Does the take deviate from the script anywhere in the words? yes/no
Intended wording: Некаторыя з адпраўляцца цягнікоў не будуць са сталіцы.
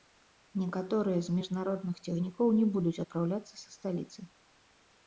yes